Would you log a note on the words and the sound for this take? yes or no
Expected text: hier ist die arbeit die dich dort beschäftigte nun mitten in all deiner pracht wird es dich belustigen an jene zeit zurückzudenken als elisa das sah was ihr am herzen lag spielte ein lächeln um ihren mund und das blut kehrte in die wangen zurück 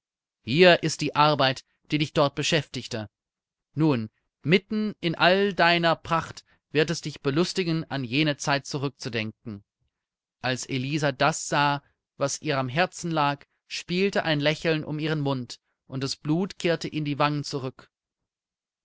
no